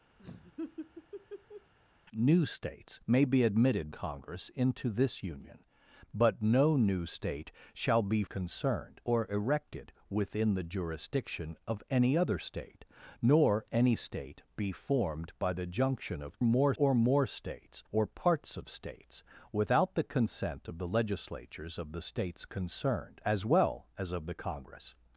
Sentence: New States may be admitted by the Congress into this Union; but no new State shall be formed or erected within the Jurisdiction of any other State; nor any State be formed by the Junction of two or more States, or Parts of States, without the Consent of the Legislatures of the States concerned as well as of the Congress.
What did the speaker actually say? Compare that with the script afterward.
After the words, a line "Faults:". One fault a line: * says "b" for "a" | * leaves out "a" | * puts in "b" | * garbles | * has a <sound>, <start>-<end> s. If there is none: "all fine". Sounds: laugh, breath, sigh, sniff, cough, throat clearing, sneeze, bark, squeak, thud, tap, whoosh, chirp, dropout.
New States may be admitted Congress into this Union; but no new State shall be concerned or erected within the Jurisdiction of any other State; nor any State be formed by the Junction of more or more States, or Parts of States, without the Consent of the Legislatures of the States concerned as well as of the Congress.
Faults:
* has a laugh, 0.2-1.7 s
* leaves out "by the"
* says "concerned" for "formed"
* says "more" for "two"